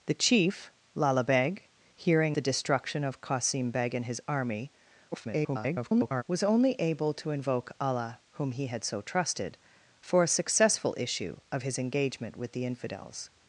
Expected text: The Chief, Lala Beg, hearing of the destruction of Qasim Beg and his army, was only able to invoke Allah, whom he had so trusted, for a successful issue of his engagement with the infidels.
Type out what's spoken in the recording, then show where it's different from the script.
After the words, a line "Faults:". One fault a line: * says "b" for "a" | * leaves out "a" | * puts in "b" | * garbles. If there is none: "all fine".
The Chief, Lala Beg, hearing the destruction of Qasim Beg and his army, [garbled] was only able to invoke Allah, whom he had so trusted, for a successful issue of his engagement with the infidels.
Faults:
* leaves out "of"
* garbles